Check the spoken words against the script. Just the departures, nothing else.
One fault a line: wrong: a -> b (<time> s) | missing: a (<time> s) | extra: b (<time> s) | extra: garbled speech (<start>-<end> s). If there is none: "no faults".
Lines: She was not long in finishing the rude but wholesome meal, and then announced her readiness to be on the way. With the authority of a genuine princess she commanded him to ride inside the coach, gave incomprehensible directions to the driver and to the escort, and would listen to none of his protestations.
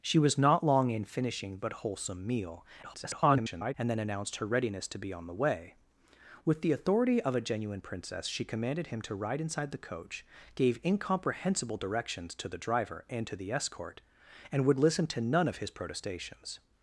missing: the rude (1.6 s)
extra: garbled speech (2.8-3.7 s)